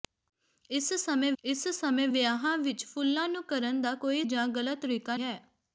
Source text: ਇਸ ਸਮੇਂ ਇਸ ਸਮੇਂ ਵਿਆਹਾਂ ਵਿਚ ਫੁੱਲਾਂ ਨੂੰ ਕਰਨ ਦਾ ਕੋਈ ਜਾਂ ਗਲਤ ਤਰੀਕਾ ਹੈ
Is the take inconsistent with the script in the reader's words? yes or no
no